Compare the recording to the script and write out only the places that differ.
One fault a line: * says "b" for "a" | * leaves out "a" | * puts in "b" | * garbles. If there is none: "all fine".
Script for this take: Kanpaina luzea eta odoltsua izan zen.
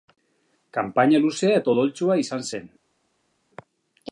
all fine